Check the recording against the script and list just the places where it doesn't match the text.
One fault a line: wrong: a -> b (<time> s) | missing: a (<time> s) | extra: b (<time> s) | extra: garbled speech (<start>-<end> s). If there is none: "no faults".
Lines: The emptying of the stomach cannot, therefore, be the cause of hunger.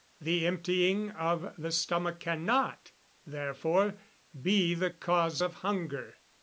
no faults